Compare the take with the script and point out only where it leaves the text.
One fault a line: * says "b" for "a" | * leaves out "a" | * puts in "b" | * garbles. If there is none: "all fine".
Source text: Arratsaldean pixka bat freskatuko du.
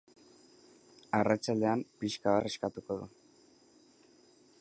* leaves out "bat"